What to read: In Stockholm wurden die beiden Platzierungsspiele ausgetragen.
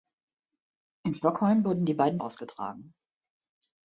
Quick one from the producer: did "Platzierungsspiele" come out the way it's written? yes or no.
no